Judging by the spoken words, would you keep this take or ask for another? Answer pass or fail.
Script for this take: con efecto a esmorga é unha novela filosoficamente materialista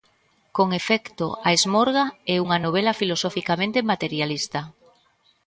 pass